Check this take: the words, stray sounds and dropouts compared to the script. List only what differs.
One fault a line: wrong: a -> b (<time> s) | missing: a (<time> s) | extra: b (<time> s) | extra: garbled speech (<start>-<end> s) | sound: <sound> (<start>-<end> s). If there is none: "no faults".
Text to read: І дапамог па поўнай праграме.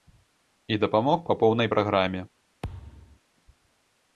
sound: thud (2.6-3.2 s)